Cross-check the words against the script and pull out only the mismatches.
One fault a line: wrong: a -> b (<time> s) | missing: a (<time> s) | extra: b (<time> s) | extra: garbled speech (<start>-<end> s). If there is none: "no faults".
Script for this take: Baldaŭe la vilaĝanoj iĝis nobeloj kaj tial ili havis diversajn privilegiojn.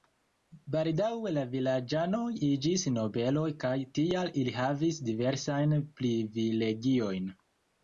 no faults